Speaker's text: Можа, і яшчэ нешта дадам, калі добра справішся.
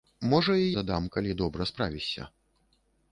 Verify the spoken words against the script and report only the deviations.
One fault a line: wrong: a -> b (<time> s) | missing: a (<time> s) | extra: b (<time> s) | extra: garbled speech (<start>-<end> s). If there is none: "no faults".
missing: яшчэ нешта (0.7 s)